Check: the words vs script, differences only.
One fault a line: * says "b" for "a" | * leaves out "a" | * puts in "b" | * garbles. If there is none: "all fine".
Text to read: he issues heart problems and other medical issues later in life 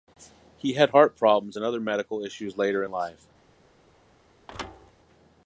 * says "had" for "issues"